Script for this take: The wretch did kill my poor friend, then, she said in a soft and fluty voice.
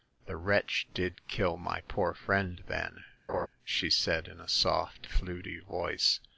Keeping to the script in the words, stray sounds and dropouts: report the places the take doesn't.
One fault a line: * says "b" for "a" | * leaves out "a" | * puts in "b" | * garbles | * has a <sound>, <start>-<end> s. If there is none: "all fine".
* has a laugh, 3.3-3.5 s
* leaves out "and"